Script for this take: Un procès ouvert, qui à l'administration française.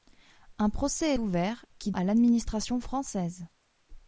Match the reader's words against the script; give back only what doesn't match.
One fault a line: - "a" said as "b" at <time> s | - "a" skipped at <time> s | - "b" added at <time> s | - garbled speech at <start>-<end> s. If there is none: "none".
none